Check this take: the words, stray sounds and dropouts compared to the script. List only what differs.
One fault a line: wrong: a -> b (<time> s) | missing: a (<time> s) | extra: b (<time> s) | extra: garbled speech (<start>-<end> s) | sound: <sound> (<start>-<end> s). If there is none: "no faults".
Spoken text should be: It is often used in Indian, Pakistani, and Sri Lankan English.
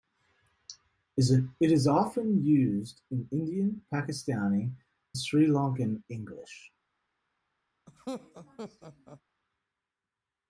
missing: and (4.8 s)
sound: laugh (7.9-9.2 s)